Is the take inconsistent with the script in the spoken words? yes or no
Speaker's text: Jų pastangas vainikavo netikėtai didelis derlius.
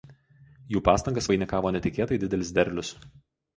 no